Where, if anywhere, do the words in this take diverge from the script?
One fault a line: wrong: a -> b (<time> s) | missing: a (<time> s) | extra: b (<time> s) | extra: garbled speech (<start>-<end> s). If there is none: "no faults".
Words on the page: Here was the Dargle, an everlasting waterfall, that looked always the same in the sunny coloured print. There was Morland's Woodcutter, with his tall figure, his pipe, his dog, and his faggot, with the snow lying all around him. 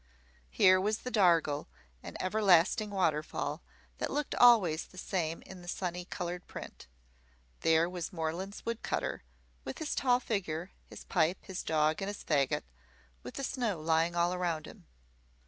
no faults